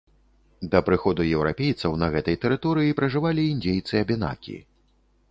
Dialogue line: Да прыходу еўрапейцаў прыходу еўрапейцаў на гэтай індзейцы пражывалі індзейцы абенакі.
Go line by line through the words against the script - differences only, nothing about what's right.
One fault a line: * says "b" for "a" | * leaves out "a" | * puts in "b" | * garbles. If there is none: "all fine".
* leaves out "прыходу еўрапейцаў"
* says "тэрыторыі" for "індзейцы"